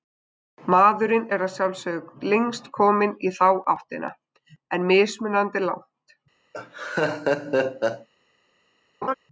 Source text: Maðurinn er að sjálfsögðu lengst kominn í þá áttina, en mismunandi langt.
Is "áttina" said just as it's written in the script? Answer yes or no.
yes